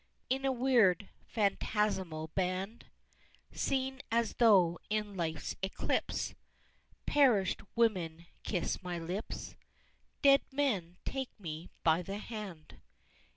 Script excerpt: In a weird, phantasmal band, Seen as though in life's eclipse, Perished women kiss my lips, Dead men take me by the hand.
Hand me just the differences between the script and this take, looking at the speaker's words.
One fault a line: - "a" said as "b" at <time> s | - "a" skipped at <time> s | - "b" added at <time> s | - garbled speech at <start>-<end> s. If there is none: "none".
none